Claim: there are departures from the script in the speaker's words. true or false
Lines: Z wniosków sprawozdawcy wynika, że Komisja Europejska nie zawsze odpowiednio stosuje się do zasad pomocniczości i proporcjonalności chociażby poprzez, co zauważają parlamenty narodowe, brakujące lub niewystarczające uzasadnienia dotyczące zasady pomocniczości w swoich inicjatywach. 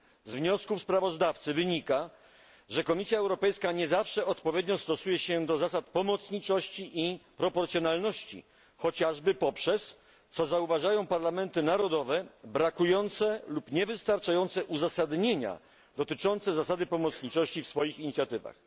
false